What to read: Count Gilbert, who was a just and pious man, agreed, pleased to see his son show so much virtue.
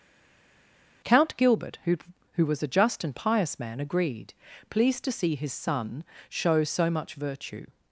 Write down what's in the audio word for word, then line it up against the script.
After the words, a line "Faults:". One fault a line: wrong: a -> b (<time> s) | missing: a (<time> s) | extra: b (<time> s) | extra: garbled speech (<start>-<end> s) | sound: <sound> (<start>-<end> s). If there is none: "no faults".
Count Gilbert, who who was a just and pious man, agreed, pleased to see his son show so much virtue.
Faults:
extra: who (2.3 s)